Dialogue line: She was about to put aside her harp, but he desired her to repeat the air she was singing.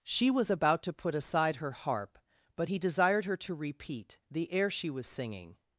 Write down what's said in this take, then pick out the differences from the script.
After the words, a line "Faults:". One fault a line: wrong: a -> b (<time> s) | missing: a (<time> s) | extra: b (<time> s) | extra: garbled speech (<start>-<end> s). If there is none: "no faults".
She was about to put aside her harp, but he desired her to repeat the air she was singing.
Faults:
no faults